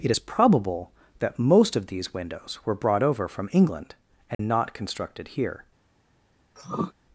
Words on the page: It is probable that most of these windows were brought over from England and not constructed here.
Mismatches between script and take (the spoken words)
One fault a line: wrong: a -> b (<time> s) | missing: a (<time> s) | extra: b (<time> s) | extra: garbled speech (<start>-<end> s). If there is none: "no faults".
no faults